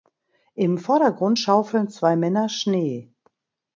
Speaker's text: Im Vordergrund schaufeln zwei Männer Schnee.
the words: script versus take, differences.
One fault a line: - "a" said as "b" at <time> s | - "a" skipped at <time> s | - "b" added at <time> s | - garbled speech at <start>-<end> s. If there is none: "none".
none